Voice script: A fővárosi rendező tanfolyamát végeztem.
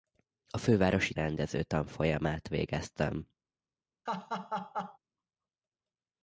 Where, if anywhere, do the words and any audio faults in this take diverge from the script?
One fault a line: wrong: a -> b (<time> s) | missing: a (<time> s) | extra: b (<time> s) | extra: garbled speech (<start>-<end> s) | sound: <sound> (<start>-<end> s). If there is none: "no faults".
sound: laugh (4.1-5.0 s)